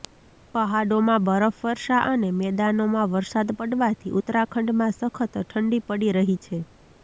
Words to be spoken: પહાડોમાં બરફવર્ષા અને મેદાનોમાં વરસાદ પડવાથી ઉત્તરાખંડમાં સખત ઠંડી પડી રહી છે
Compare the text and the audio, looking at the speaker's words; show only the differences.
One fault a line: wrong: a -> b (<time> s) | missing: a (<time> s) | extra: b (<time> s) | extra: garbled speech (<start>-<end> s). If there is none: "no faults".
no faults